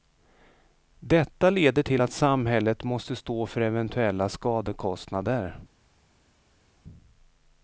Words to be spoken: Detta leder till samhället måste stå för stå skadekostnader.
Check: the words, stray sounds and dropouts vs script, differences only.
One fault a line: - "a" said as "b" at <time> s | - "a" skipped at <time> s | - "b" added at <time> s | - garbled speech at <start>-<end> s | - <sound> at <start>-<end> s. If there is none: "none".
- "att" added at 2.0 s
- "stå" said as "eventuella" at 3.6 s